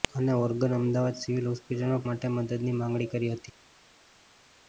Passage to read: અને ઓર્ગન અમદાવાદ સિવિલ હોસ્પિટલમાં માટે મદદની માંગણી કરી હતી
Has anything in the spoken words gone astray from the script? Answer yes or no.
no